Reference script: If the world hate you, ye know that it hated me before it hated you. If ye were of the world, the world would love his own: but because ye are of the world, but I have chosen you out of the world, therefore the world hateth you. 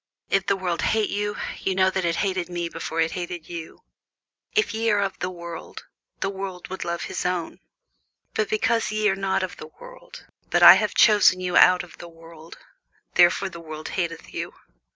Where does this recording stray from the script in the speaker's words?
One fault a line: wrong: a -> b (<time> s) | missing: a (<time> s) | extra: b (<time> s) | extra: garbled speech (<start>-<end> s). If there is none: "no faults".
extra: not (9.1 s)